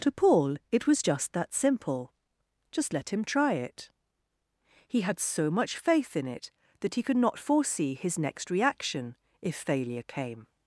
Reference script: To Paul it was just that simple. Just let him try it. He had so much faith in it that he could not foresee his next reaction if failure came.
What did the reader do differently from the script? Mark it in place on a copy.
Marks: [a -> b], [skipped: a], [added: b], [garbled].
To Paul it was just that simple. Just let him try it. He had so much faith in it that he could not foresee his next reaction if failure came.